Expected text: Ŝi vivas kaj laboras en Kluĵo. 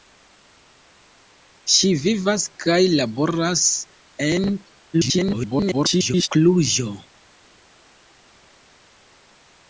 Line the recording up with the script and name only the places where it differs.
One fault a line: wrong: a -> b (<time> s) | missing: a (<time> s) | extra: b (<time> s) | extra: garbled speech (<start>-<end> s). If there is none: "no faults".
extra: garbled speech (4.9-6.3 s)